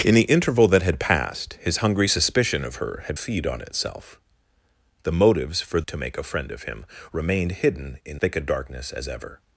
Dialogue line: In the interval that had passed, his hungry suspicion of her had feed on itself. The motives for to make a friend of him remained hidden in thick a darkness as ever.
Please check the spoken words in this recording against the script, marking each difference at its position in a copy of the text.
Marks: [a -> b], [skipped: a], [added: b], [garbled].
In the interval that had passed, his hungry suspicion of her had feed on itself. The motives for to make a friend of him remained hidden in thick a darkness as ever.